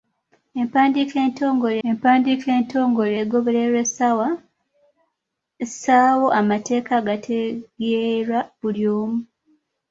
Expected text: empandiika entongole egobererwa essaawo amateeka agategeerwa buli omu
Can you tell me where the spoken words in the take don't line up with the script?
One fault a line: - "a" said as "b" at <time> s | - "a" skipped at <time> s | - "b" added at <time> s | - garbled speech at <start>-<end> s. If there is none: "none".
- "empandiika entongole" added at 1.9 s